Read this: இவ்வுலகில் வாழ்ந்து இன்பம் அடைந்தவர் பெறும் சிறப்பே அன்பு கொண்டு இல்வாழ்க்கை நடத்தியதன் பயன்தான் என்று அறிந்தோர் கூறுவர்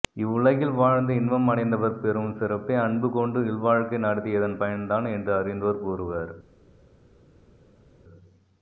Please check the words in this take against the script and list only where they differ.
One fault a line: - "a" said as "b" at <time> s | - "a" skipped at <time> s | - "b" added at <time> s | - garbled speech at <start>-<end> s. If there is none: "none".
none